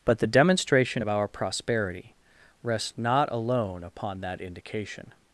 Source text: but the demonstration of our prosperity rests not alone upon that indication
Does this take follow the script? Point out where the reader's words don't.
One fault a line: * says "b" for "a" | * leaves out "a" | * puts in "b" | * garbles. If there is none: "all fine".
all fine